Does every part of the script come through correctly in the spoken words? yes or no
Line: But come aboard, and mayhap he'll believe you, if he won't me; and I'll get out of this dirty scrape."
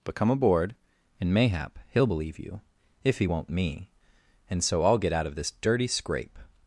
no